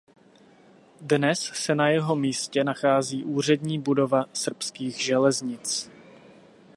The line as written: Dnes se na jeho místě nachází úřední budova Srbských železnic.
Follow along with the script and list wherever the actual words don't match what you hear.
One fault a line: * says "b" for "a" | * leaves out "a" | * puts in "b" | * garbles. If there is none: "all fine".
all fine